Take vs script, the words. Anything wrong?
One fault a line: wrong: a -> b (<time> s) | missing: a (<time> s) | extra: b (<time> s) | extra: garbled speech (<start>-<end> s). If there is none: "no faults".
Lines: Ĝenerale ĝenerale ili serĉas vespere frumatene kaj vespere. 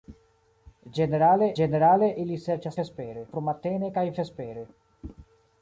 no faults